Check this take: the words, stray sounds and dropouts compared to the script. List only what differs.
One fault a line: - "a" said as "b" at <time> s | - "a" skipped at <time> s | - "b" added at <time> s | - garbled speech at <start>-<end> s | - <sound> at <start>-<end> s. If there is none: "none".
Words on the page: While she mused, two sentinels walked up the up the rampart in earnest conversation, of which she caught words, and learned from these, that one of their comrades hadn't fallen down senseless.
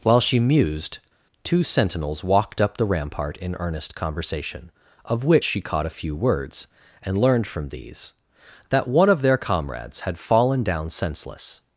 - "up the" skipped at 2.9 s
- "a few" added at 5.9 s
- "hadn't" said as "had" at 10.0 s